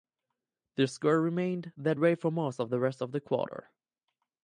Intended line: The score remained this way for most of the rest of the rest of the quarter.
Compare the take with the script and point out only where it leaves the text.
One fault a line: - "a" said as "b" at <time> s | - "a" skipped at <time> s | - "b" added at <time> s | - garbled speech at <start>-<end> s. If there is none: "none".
- "this" said as "that" at 1.7 s
- "rest of the" skipped at 3.2 s